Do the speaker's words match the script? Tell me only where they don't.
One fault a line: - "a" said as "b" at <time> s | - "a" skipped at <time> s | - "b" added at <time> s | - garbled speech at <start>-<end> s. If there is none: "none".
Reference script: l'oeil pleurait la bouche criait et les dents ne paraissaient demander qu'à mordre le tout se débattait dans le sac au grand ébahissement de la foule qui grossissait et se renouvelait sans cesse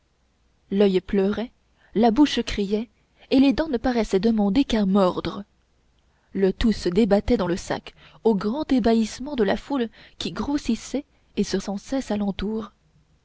- "renouvelait" skipped at 11.6 s